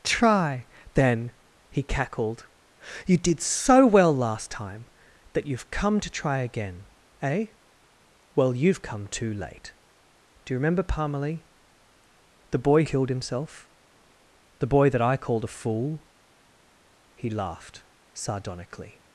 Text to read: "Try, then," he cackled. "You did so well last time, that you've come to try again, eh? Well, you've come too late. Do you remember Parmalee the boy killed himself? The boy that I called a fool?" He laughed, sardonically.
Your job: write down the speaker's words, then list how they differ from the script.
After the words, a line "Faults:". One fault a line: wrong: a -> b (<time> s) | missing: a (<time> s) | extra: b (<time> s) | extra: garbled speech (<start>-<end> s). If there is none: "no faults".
"Try, then," he cackled. "You did so well last time, that you've come to try again, eh? Well, you've come too late. Do you remember Parmalee the boy killed himself? The boy that I called a fool?" He laughed, sardonically.
Faults:
no faults